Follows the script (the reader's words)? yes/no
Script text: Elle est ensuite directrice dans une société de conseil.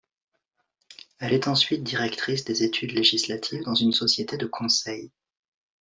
no